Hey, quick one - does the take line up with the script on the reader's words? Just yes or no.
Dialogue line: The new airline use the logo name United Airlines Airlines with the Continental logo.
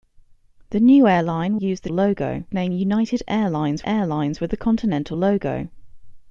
yes